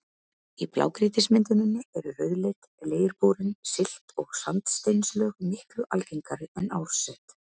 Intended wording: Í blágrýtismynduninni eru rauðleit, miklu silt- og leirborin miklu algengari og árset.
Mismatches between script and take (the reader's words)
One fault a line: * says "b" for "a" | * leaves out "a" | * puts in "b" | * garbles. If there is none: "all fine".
* says "leirborin" for "miklu"
* says "sandsteinslög" for "leirborin"
* says "en" for "og"